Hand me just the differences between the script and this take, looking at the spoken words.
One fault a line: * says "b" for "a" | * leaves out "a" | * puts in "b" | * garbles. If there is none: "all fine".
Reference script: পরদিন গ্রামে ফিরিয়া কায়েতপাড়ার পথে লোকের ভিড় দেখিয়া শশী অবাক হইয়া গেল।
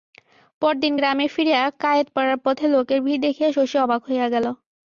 all fine